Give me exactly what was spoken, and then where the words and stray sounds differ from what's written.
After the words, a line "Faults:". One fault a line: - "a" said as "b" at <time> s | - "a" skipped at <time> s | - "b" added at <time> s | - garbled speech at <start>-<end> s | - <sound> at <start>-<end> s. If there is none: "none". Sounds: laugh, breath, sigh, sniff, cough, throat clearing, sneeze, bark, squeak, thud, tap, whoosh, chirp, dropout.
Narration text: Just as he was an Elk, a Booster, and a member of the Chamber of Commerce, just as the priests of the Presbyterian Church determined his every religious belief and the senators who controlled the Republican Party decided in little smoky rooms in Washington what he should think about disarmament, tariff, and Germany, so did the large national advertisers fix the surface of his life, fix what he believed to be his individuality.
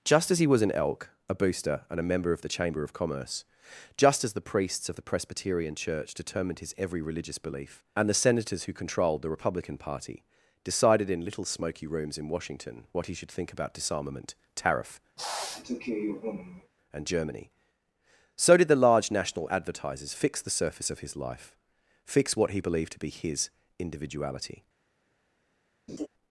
Just as he was an Elk, a Booster, and a member of the Chamber of Commerce, just as the priests of the Presbyterian Church determined his every religious belief and the senators who controlled the Republican Party decided in little smoky rooms in Washington what he should think about disarmament, tariff, and Germany, so did the large national advertisers fix the surface of his life, fix what he believed to be his individuality.
Faults:
- sniff at 15.2-16.7 s
- laugh at 25.9-26.1 s